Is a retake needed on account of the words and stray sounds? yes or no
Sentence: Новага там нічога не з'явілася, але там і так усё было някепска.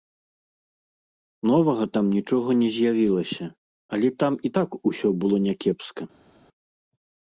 no